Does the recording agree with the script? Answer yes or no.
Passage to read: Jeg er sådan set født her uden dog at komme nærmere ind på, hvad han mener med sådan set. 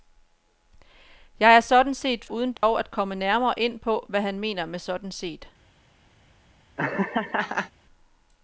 no